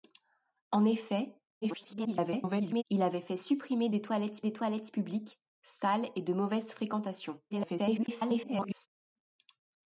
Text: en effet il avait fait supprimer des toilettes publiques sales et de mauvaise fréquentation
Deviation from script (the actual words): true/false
true